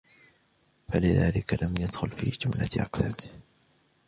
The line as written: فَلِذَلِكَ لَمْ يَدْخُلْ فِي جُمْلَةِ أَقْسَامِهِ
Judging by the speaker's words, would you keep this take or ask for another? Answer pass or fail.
pass